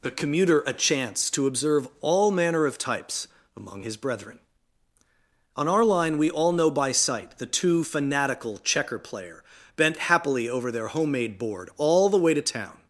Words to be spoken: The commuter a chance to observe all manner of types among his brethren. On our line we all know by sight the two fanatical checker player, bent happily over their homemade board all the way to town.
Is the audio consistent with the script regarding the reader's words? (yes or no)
yes